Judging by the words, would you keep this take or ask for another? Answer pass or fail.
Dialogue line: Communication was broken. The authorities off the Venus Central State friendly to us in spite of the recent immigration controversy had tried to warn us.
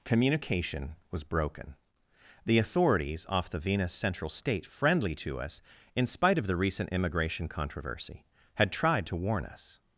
pass